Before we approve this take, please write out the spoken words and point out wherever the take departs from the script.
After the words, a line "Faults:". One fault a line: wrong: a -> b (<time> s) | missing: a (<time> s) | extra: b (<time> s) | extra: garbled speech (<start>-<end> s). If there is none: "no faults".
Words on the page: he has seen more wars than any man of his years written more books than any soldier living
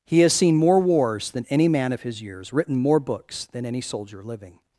he has seen more wars than any man of his years written more books than any soldier living
Faults:
no faults